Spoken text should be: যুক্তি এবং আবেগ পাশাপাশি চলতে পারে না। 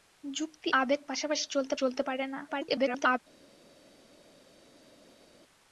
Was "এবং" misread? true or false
true